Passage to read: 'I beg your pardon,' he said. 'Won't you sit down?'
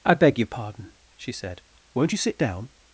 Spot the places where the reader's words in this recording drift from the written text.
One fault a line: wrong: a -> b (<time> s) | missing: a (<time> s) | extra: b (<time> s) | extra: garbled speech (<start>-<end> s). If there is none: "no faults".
wrong: he -> she (1.1 s)